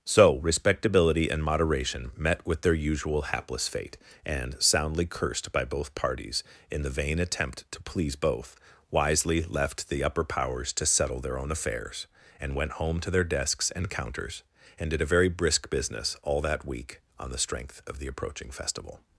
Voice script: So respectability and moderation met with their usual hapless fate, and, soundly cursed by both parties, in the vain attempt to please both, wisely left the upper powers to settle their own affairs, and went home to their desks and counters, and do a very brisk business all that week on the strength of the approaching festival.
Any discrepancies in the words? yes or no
yes